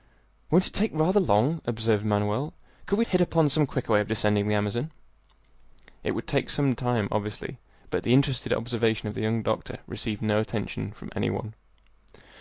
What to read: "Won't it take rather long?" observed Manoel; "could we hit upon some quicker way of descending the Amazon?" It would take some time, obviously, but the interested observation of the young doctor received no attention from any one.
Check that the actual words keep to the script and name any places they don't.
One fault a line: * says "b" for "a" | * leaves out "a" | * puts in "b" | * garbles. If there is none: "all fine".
all fine